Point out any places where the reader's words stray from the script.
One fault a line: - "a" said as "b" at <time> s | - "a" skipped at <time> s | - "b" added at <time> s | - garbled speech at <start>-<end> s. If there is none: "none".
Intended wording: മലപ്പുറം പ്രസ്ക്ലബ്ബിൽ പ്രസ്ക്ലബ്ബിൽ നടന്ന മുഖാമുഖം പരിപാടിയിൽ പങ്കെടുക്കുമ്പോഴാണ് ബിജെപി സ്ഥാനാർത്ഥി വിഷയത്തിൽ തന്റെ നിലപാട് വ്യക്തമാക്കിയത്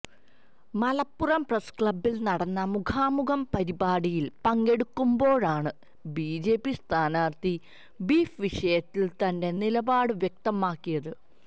- "പ്രസ്ക്ലബ്ബിൽ" skipped at 2.1 s
- "ബീഫ്" added at 8.0 s